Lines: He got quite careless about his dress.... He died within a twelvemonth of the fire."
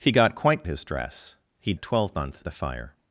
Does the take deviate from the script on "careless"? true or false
true